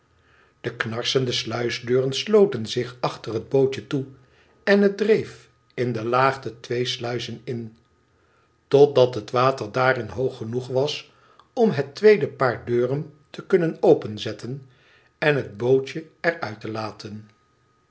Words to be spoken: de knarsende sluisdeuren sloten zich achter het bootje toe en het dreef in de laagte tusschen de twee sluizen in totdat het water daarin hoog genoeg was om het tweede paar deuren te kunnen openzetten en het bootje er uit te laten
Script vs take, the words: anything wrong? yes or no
yes